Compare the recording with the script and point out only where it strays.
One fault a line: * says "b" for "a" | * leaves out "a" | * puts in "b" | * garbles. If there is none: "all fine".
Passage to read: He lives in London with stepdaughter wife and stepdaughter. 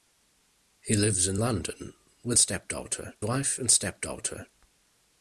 all fine